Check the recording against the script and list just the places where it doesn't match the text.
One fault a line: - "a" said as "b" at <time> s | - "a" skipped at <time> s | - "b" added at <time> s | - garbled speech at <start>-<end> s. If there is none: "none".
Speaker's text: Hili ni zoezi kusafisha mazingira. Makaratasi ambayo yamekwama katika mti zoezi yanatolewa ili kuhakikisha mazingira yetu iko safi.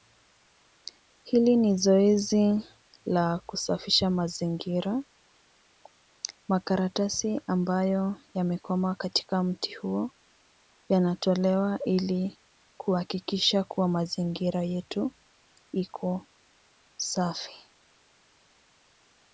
- "la" added at 3.0 s
- "zoezi" said as "huo" at 9.7 s
- "kuwa" added at 13.6 s